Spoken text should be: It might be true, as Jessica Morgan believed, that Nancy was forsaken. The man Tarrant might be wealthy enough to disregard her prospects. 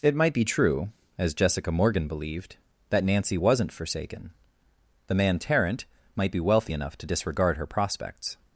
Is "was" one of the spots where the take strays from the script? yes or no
yes